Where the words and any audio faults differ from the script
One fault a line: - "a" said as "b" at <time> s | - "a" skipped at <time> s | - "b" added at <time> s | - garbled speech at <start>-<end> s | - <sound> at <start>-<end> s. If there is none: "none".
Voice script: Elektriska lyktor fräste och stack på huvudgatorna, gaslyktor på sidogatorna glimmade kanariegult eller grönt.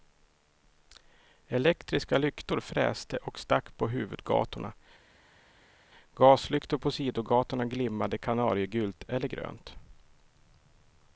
none